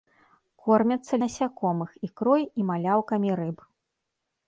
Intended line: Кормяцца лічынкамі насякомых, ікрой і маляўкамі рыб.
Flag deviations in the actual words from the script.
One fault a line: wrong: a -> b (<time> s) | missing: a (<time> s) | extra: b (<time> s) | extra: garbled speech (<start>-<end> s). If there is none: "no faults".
missing: лічынкамі (1.2 s)